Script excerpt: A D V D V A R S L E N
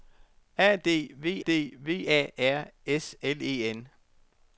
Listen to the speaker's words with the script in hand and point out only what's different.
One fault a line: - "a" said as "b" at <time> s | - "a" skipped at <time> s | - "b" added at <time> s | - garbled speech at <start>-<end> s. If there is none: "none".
none